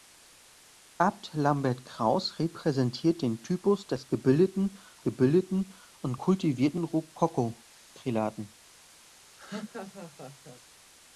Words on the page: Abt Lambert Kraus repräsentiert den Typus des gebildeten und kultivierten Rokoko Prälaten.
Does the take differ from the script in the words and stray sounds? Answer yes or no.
yes